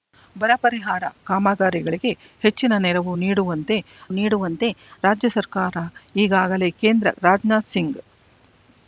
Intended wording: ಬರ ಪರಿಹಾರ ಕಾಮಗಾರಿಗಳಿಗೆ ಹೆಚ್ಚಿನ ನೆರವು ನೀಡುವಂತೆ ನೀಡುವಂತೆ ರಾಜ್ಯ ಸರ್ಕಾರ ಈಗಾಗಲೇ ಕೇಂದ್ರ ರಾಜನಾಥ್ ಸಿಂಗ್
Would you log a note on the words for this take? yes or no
no